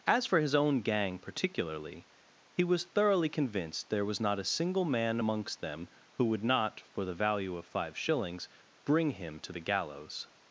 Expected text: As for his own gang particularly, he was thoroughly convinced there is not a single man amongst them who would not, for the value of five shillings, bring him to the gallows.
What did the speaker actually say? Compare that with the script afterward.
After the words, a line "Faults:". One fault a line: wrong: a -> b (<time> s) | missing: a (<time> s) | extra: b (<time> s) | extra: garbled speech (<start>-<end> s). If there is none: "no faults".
As for his own gang particularly, he was thoroughly convinced there was not a single man amongst them who would not, for the value of five shillings, bring him to the gallows.
Faults:
wrong: is -> was (4.0 s)